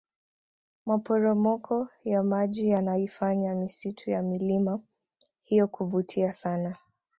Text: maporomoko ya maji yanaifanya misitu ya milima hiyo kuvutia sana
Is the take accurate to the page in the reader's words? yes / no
yes